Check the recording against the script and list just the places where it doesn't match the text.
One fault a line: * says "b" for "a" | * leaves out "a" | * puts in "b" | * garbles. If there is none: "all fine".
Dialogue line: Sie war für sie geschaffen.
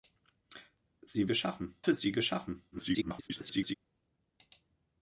* says "geschaffen" for "war"
* garbles